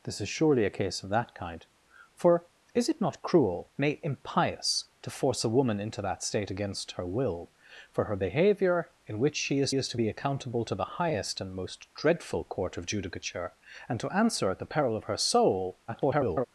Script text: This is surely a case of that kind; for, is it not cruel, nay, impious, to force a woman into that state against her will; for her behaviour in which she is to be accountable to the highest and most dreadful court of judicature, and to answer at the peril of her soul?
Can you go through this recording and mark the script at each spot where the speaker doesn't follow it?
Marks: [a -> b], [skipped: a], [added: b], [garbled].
This is surely a case of that kind; for, is it not cruel, nay, impious, to force a woman into that state against her will; for her behaviour in which she is [added: is] to be accountable to the highest and most dreadful court of judicature, and to answer at the peril of her soul? [garbled]